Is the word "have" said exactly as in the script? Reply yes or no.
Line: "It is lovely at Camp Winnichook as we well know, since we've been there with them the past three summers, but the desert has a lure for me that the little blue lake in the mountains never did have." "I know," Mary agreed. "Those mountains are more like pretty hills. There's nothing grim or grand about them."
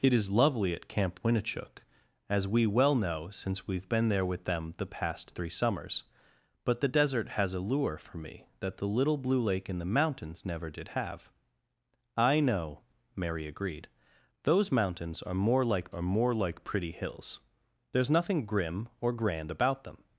yes